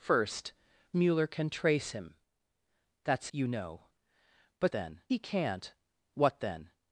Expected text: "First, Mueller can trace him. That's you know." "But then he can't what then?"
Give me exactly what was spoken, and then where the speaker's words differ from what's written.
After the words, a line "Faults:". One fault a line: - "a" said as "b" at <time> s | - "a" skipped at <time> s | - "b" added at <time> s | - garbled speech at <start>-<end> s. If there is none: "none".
"First, Mueller can trace him. That's you know." "But then he can't what then?"
Faults:
none